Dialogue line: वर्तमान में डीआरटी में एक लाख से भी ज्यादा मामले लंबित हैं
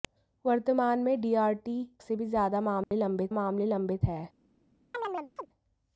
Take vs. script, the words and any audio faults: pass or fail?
fail